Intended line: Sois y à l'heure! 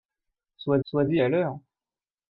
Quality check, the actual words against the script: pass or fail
fail